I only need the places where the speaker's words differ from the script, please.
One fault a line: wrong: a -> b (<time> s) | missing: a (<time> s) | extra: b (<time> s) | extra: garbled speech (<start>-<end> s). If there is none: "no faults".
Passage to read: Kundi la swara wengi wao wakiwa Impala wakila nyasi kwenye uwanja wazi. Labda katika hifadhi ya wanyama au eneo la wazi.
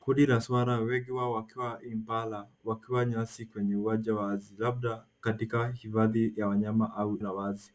missing: eneo (7.2 s)